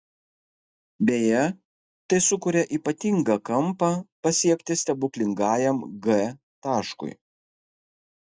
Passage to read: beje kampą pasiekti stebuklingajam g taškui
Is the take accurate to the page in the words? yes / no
no